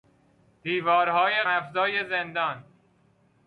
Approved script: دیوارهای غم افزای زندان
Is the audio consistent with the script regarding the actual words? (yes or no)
no